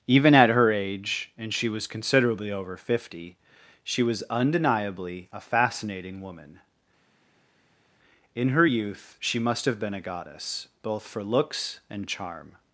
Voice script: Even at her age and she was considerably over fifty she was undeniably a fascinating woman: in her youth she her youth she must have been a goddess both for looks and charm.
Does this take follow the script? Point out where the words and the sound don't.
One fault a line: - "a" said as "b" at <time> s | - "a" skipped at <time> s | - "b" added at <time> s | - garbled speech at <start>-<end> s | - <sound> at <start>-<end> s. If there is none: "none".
- "her youth she" skipped at 9.4 s